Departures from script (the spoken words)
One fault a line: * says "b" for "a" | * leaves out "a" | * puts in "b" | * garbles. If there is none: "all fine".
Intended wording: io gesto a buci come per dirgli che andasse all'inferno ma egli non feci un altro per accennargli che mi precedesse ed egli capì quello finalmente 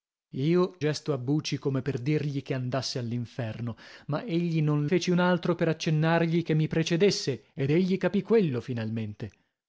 all fine